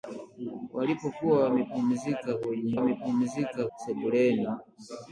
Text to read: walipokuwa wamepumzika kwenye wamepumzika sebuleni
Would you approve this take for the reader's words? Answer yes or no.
yes